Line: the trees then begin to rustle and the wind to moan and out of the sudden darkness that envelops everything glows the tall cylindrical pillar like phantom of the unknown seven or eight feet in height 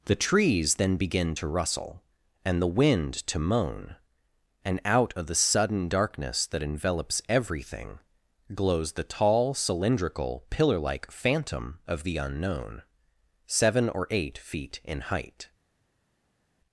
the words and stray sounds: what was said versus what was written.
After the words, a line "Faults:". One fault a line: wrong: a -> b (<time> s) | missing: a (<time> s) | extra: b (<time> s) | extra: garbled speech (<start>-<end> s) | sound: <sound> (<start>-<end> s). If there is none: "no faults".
the trees then begin to rustle and the wind to moan and out of the sudden darkness that envelops everything glows the tall cylindrical pillar like phantom of the unknown seven or eight feet in height
Faults:
no faults